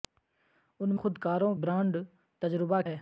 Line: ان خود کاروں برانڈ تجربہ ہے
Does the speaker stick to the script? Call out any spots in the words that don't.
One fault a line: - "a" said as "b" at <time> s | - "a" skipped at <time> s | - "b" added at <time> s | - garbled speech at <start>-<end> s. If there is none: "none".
none